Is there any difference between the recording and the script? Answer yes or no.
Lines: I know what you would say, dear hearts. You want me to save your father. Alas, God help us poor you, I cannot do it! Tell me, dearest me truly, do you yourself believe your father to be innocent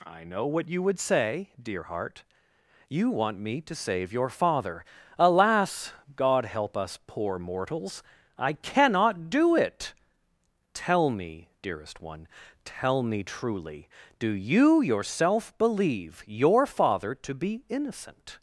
yes